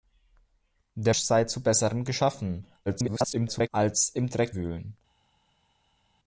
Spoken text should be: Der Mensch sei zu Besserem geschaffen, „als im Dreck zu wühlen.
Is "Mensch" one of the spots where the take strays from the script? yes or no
yes